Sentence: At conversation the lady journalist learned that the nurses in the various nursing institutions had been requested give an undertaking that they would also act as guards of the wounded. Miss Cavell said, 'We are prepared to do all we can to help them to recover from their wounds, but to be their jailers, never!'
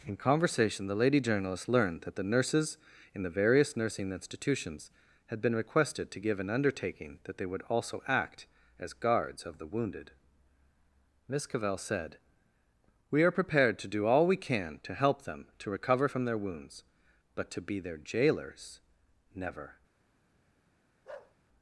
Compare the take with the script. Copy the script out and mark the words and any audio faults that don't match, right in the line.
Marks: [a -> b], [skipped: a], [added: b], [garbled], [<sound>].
[At -> In] conversation the lady journalist learned that the nurses in the various nursing institutions had been requested [added: to] give an undertaking that they would also act as guards of the wounded. Miss Cavell said, 'We are prepared to do all we can to help them to recover from their wounds, but to be their jailers, never!' [bark]